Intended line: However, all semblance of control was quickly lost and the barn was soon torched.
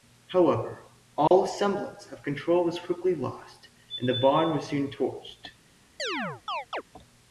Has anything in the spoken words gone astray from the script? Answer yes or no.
no